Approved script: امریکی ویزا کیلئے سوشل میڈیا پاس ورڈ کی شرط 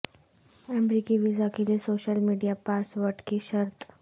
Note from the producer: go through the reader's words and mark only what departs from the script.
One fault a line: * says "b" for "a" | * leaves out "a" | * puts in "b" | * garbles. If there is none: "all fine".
all fine